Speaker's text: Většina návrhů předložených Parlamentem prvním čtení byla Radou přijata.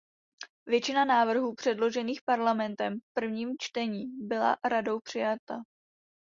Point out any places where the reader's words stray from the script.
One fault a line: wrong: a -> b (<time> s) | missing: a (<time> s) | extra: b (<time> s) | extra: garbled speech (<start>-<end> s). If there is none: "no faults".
extra: v (3.0 s)